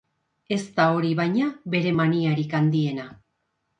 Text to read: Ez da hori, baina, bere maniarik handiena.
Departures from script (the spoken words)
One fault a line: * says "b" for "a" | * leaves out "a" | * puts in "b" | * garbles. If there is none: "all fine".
all fine